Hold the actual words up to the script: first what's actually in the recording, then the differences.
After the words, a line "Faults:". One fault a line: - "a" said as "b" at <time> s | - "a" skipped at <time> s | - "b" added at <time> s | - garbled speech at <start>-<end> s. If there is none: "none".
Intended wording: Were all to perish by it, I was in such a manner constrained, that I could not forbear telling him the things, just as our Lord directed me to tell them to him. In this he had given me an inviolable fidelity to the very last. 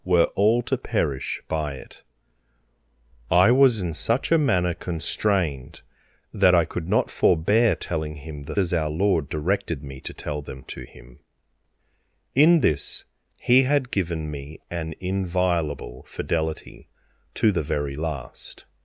Were all to perish by it, I was in such a manner constrained, that I could not forbear telling him the as our Lord directed me to tell them to him. In this he had given me an inviolable fidelity to the very last.
Faults:
- "things just" skipped at 8.6 s